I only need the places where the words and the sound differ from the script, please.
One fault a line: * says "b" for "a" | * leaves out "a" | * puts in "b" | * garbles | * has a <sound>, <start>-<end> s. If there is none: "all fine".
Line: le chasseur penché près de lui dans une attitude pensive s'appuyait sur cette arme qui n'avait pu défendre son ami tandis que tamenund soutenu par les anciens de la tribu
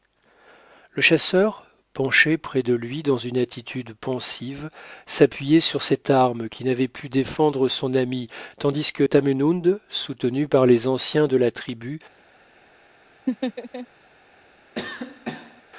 * has a laugh, 13.3-13.9 s
* has a cough, 14.7-15.6 s